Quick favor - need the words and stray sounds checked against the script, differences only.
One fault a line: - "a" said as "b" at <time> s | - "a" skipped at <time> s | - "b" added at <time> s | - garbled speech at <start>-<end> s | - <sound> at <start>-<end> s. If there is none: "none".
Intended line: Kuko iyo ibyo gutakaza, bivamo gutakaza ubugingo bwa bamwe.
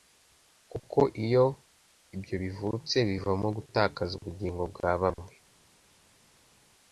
- "gutakaza" said as "bivutse" at 2.4 s